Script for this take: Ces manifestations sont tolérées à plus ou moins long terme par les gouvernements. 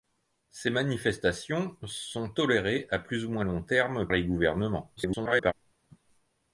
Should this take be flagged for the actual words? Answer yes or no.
yes